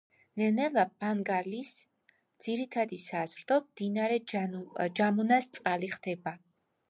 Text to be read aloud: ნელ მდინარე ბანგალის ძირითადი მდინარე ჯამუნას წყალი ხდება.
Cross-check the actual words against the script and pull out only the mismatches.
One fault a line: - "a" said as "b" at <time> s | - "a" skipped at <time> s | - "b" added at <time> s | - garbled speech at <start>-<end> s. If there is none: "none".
- "მდინარე" said as "ნელა" at 0.6 s
- "საზრდო" added at 3.1 s